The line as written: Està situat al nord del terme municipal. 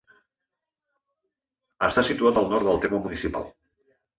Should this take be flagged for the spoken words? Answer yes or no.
no